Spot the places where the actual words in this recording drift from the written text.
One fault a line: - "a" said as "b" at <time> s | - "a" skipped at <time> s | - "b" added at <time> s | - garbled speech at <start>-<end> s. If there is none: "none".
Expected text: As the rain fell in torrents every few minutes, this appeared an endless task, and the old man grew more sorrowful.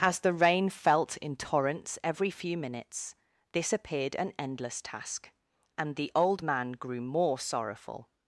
- "fell" said as "felt" at 0.7 s